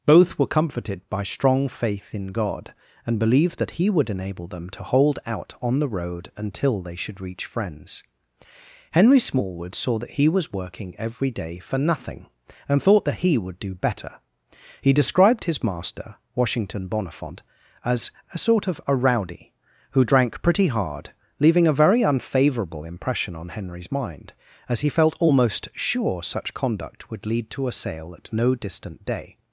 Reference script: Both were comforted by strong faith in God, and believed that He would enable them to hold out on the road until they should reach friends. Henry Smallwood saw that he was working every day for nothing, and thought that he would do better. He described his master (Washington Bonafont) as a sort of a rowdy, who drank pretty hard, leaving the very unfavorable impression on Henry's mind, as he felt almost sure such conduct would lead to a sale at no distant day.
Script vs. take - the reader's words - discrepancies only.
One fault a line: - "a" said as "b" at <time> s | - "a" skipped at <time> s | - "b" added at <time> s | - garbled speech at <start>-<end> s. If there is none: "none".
- "the" said as "a" at 21.7 s